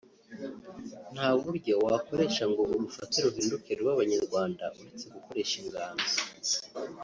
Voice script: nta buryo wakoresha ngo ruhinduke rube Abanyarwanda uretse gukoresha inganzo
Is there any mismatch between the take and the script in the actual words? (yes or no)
yes